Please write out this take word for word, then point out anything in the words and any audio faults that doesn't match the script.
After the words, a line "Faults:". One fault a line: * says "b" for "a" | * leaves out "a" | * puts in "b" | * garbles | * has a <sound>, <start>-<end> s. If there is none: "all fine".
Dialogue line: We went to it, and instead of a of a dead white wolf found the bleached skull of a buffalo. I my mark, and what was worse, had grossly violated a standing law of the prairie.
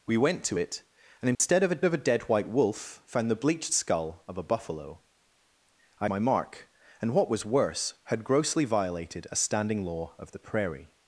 We went to it, and instead of a of a dead white wolf found the bleached skull of a buffalo. I my mark, and what was worse, had grossly violated a standing law of the prairie.
Faults:
* has a dropout, 1.3-1.4 s